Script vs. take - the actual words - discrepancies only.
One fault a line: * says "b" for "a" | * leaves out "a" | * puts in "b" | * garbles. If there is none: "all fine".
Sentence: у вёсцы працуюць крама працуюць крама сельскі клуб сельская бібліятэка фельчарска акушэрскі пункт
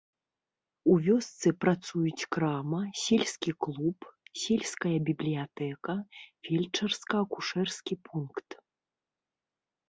* leaves out "працуюць крама"